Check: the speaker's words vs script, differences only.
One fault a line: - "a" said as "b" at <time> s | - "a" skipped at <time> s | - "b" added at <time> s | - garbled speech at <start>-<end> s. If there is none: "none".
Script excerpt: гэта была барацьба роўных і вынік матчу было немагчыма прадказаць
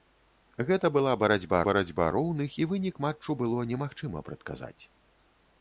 - "барацьба" added at 1.7 s